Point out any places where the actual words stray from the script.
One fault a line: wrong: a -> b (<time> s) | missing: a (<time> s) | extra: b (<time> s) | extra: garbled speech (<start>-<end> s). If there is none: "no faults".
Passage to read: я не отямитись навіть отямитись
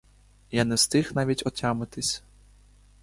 wrong: отямитись -> встиг (0.7 s)